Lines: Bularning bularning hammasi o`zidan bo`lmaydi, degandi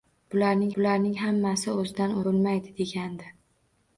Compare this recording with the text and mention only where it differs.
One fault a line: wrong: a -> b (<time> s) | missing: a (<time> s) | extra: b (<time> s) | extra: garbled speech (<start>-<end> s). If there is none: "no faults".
no faults